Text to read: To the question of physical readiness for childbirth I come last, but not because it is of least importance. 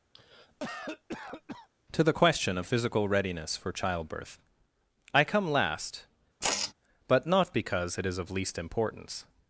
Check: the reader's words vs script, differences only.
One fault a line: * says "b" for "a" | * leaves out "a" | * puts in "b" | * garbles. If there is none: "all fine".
all fine